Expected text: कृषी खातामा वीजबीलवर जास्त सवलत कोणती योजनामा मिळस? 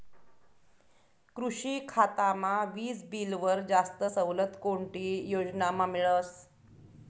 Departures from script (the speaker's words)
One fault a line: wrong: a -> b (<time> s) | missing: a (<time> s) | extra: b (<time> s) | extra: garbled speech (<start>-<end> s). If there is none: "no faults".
no faults